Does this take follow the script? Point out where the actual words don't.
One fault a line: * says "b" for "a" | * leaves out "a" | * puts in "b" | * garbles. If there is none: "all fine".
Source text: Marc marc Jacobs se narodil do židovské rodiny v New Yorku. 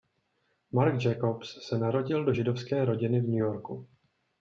* leaves out "marc"